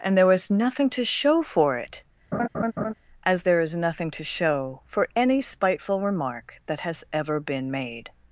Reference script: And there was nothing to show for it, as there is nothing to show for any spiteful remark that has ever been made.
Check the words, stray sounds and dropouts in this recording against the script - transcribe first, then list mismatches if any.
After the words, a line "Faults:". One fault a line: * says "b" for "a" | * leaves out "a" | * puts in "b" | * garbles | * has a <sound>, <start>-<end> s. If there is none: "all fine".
And there was nothing to show for it, as there is nothing to show for any spiteful remark that has ever been made.
Faults:
* has a laugh, 2.3-2.9 s